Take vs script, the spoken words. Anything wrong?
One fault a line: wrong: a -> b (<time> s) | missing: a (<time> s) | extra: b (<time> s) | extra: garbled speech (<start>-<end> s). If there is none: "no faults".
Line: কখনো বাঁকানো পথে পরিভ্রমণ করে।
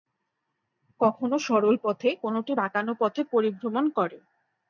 extra: সরল পথে কোনটি (1.5 s)